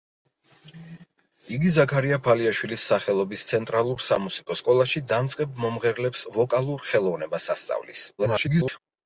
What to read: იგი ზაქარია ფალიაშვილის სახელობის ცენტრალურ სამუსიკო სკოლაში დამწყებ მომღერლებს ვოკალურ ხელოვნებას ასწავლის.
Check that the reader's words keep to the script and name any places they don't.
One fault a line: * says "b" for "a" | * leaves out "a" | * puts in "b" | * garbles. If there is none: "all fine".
* garbles